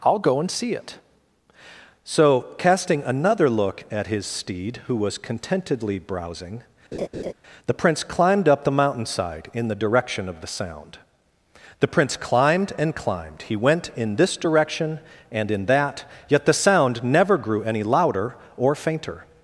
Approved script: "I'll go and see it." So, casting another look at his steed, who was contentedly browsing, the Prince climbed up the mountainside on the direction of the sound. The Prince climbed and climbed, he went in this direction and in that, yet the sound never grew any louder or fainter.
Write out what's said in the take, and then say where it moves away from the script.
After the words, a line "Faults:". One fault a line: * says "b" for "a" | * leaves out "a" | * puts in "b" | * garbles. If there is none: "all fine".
"I'll go and see it." So, casting another look at his steed, who was contentedly browsing, the Prince climbed up the mountainside in the direction of the sound. The Prince climbed and climbed, he went in this direction and in that, yet the sound never grew any louder or fainter.
Faults:
* says "in" for "on"